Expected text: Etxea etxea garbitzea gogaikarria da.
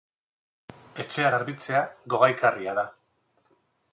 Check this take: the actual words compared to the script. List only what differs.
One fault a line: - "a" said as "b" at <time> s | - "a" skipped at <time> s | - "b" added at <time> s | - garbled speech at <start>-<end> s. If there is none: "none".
- "etxea" skipped at 1.3 s